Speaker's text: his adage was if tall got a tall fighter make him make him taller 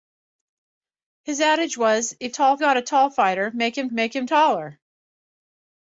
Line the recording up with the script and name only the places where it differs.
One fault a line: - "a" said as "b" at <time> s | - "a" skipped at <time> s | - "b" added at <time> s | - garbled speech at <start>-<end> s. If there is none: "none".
none